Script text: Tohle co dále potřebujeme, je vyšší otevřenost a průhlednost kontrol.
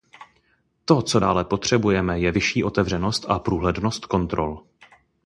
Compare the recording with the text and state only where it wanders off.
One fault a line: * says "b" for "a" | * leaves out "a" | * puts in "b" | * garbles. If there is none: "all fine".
* says "To" for "Tohle"